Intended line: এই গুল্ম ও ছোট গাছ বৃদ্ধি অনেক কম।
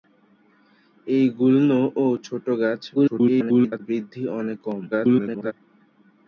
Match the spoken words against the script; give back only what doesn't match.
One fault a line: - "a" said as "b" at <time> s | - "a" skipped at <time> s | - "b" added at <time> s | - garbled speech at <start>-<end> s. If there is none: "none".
- garbled speech at 2.9-3.8 s
- garbled speech at 4.9-5.5 s